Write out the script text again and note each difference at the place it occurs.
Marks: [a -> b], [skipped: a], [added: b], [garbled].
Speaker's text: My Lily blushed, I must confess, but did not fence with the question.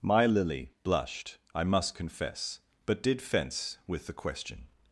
My Lily blushed, I must confess, but did [skipped: not] fence with the question.